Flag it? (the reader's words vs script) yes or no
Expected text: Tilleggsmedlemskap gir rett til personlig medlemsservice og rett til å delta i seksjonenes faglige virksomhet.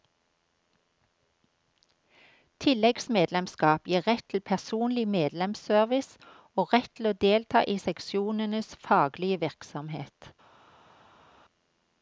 no